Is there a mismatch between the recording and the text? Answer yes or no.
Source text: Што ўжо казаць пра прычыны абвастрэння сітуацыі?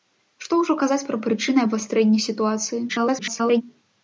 yes